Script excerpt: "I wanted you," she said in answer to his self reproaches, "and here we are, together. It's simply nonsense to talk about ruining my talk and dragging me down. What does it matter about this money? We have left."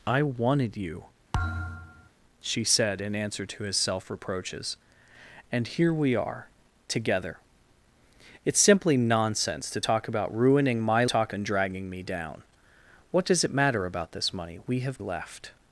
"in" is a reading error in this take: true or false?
false